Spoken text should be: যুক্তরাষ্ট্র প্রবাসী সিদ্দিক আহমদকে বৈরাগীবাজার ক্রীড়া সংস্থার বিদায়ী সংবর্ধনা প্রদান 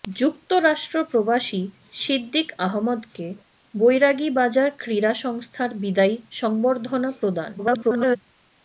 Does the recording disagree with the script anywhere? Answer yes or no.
yes